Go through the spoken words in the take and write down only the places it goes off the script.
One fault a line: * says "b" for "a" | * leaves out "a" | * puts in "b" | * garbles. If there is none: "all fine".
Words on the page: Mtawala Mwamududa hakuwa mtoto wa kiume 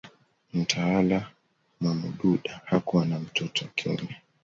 * puts in "na"